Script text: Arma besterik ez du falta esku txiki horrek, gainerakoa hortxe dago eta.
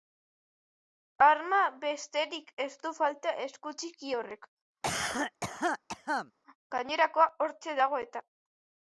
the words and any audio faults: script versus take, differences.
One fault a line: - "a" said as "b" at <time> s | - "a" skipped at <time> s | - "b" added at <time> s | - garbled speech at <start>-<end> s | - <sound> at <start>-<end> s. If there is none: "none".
- cough at 4.8-6.3 s